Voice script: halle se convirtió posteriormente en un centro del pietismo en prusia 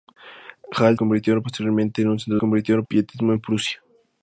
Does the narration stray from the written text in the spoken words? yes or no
yes